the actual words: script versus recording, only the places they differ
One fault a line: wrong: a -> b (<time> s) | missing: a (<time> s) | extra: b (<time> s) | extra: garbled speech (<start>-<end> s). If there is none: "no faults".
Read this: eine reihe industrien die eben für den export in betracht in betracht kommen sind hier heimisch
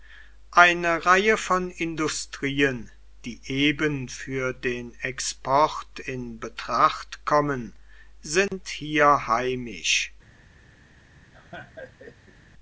extra: von (1.4 s)
missing: in betracht (7.2 s)